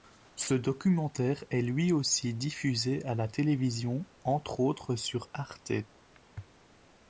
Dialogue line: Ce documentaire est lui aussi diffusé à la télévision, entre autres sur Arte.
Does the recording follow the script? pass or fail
pass